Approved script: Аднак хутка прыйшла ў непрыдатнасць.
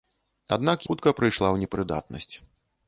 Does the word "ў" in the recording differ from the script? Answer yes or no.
no